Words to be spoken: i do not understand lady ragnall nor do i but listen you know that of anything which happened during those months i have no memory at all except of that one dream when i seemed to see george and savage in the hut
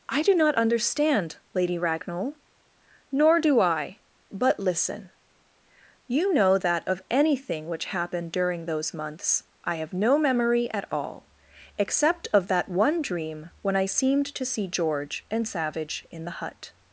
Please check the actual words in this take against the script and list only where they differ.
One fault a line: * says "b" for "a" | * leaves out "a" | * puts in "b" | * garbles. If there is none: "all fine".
all fine